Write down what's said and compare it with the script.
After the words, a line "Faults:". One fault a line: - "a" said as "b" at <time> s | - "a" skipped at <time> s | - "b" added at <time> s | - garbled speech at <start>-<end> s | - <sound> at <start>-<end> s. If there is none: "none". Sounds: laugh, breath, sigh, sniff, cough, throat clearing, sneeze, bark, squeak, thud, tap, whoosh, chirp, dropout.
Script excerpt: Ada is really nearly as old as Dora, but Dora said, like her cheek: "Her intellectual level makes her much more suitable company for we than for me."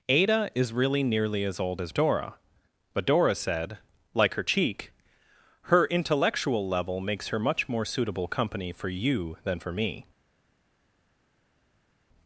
Ada is really nearly as old as Dora, but Dora said, like her cheek: "Her intellectual level makes her much more suitable company for you than for me."
Faults:
- "we" said as "you" at 8.9 s